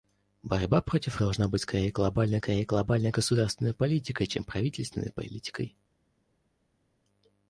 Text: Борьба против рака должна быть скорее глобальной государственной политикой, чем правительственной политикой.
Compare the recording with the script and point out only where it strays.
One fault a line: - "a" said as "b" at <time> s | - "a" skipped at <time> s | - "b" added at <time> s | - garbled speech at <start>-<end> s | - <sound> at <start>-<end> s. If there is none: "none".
- "рака" skipped at 1.2 s
- "скорее глобальной" added at 2.4 s